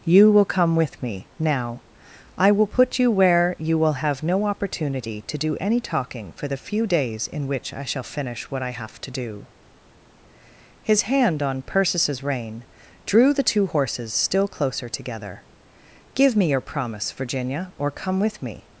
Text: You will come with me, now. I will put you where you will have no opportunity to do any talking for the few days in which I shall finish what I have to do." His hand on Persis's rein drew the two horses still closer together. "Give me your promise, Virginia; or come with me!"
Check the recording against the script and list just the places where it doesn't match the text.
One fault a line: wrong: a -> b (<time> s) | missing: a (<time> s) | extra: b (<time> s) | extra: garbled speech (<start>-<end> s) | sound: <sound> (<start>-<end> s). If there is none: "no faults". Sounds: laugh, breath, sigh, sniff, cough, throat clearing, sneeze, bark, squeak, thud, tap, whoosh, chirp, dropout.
no faults